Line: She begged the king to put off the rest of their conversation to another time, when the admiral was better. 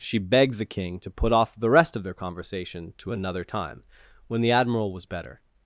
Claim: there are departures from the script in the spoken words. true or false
false